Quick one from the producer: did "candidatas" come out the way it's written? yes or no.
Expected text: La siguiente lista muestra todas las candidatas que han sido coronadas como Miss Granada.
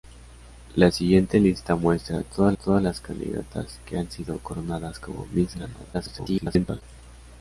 yes